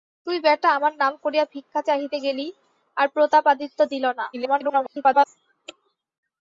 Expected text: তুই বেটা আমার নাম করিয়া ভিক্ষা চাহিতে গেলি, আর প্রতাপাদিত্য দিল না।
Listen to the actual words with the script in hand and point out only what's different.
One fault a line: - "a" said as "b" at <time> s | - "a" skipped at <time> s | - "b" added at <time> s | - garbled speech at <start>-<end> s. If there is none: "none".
- garbled speech at 4.3-5.3 s